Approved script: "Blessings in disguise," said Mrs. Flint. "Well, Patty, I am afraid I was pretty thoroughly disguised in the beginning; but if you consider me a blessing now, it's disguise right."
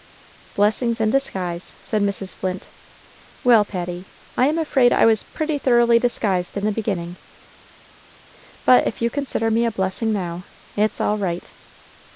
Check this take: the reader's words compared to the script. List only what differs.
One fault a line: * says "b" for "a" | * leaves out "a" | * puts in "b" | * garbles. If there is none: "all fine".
* says "all" for "disguise"